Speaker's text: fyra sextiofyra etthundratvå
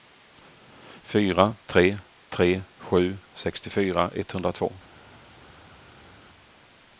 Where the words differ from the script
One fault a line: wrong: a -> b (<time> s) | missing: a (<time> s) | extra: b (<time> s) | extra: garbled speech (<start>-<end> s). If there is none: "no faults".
extra: tre tre sju (1.7 s)